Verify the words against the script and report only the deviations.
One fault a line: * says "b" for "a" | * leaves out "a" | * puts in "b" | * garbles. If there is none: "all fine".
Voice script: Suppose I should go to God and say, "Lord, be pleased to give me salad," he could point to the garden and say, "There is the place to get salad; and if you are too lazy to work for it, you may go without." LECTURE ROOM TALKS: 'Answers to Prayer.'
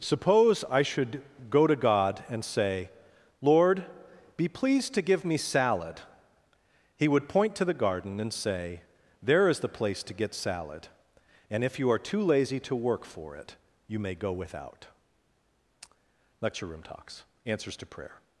* says "would" for "could"